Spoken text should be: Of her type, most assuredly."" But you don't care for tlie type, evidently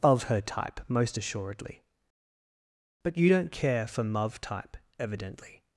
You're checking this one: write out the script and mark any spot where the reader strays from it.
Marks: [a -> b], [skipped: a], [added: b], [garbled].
Of her type, most assuredly."" But you don't care for [tlie -> muv] type, evidently